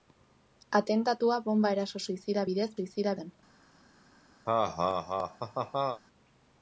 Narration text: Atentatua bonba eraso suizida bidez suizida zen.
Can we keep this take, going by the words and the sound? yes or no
no